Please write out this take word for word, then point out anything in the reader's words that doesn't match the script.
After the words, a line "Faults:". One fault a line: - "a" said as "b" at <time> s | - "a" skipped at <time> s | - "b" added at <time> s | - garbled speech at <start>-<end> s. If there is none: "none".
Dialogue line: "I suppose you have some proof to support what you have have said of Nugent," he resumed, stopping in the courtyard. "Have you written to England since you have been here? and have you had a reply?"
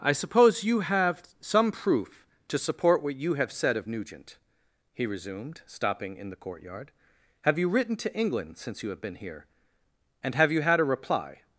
"I suppose you have some proof to support what you have said of Nugent," he resumed, stopping in the courtyard. "Have you written to England since you have been here? and have you had a reply?"
Faults:
- "have" skipped at 3.5 s